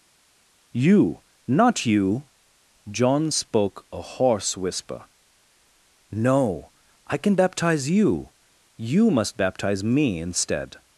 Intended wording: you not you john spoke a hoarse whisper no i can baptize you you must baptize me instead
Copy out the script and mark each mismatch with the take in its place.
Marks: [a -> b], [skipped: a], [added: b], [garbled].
you not you john spoke a hoarse whisper no i can baptize you you must baptize me instead